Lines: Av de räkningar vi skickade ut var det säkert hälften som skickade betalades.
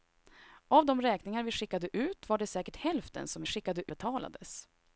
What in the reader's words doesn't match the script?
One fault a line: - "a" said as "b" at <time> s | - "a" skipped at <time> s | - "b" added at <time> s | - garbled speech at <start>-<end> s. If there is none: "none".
none